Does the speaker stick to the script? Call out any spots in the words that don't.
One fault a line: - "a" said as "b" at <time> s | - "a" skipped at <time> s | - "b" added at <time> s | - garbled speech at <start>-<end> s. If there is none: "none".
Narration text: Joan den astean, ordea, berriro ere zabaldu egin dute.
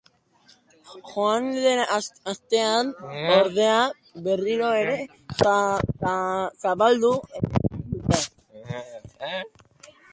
none